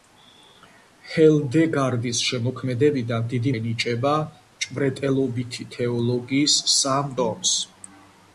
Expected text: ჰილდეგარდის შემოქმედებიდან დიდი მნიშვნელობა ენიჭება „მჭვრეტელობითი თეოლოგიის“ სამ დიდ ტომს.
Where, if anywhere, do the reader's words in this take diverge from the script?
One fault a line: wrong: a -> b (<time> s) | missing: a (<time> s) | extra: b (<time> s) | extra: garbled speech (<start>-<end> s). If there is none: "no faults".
missing: მნიშვნელობა (3.5 s)
missing: დიდ (7.1 s)